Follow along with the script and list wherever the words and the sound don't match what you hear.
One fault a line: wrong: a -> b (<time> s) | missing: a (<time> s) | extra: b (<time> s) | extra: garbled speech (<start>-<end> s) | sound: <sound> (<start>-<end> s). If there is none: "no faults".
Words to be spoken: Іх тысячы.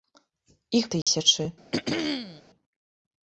sound: dropout (1.0-1.1 s)
sound: throat clearing (1.7-2.4 s)